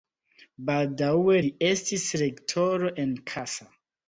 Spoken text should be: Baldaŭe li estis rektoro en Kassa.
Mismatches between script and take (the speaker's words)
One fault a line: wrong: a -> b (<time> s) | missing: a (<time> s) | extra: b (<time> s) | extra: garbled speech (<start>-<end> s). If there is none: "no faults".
no faults